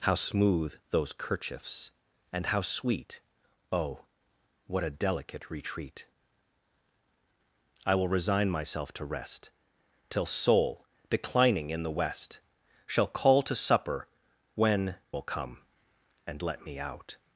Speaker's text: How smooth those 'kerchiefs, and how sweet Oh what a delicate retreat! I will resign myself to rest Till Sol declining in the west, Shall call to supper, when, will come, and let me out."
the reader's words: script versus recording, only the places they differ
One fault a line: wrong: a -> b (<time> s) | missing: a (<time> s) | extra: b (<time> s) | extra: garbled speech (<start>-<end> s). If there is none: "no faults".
no faults